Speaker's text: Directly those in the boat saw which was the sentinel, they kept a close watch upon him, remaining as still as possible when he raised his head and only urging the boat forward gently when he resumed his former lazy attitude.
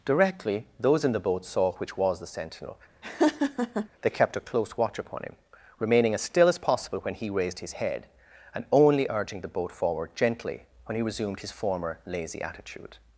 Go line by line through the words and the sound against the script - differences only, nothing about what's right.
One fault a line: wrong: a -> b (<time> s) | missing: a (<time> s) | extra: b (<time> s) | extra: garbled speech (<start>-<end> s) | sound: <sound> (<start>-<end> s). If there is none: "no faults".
sound: laugh (3.0-3.9 s)